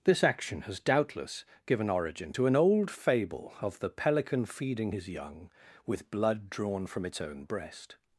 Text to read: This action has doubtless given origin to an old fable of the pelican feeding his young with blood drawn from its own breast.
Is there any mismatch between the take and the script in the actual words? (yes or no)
no